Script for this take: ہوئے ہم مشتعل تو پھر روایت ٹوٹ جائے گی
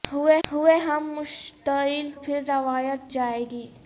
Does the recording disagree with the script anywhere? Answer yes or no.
yes